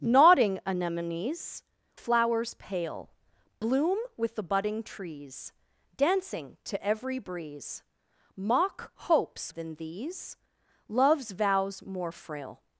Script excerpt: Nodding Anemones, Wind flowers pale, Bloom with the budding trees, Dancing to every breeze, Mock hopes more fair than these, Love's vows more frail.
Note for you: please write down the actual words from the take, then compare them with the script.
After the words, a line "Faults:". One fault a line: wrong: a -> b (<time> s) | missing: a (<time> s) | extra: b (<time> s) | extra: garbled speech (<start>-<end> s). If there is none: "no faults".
Nodding Anemones, Flowers pale, Bloom with the budding trees, Dancing to every breeze, Mock hopes than these, Love's vows more frail.
Faults:
missing: Wind (1.6 s)
missing: more fair (9.5 s)